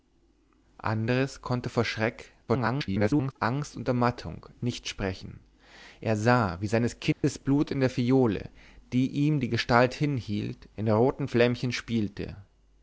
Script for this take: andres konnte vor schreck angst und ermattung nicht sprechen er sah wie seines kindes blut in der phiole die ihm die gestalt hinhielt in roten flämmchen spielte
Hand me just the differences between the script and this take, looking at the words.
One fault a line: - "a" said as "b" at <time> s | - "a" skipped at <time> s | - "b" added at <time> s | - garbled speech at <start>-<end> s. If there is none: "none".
- garbled speech at 2.5-3.3 s